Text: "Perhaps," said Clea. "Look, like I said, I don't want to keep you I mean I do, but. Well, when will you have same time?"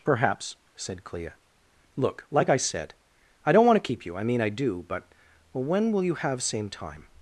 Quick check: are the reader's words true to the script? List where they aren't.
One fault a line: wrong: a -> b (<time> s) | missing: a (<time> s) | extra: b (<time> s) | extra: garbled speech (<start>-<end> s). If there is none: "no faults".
no faults